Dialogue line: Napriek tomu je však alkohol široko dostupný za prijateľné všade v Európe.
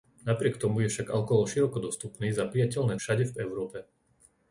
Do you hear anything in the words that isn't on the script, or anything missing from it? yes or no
no